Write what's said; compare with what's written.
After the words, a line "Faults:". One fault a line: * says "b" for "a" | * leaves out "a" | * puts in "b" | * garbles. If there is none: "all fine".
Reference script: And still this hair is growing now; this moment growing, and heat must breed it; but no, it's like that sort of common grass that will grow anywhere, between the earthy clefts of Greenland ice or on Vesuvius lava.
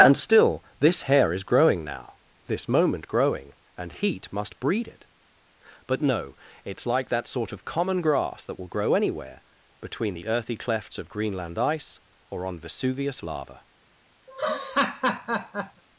And still this hair is growing now; this moment growing, and heat must breed it; but no, it's like that sort of common grass that will grow anywhere, between the earthy clefts of Greenland ice or on Vesuvius lava.
Faults:
all fine